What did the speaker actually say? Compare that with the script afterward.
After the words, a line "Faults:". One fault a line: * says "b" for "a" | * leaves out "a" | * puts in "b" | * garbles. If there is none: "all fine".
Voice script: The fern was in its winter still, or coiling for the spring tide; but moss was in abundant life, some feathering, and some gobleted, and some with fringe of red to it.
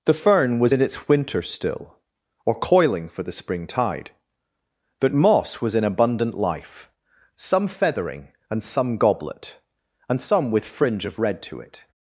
The fern was in its winter still, or coiling for the spring tide; but moss was in abundant life, some feathering, and some goblet, and some with fringe of red to it.
Faults:
* says "goblet" for "gobleted"